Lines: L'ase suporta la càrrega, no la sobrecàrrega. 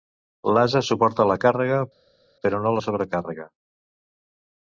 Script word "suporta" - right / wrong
right